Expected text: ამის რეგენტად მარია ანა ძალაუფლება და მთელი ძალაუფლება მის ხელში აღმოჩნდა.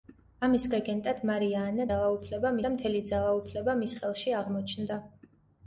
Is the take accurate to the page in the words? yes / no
yes